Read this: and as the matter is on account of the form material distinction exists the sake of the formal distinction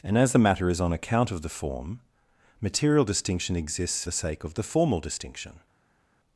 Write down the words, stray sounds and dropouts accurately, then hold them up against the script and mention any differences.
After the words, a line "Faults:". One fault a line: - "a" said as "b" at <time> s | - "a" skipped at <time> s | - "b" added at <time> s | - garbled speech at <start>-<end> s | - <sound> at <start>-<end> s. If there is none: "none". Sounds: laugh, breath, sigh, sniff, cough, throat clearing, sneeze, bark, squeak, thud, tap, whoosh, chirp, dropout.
and as the matter is on account of the form material distinction exists the sake of the formal distinction
Faults:
none